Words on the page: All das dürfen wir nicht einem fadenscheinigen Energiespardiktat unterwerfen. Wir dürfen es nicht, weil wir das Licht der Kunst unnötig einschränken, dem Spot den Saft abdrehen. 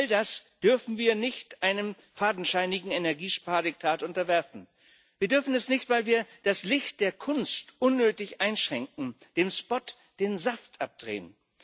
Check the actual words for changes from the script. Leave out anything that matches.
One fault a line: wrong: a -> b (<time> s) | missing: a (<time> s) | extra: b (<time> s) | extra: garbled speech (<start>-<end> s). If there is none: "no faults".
no faults